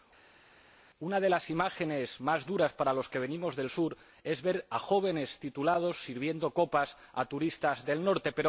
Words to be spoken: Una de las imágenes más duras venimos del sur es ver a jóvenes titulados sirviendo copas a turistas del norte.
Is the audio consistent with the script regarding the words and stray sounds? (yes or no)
no